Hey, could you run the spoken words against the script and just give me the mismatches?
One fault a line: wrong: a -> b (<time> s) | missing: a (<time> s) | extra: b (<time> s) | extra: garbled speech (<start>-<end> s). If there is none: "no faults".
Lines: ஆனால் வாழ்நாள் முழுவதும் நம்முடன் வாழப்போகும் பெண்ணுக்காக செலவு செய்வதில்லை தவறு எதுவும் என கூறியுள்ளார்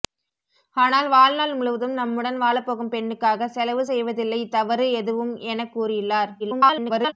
extra: garbled speech (6.4-7.1 s)